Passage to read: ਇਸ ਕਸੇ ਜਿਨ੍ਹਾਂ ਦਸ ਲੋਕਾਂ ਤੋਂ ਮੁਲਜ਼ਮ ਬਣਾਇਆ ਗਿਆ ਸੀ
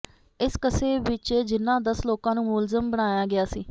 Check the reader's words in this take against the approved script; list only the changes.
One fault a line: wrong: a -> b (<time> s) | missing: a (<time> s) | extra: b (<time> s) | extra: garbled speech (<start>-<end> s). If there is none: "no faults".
extra: ਵਿਚ (1.0 s)
wrong: ਤੋਂ -> ਨੂੰ (2.4 s)